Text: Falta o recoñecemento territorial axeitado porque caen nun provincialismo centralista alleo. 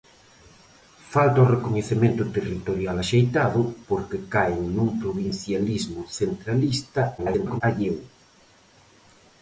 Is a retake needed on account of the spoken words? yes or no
yes